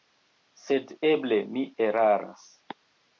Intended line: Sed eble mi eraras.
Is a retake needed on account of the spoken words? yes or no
no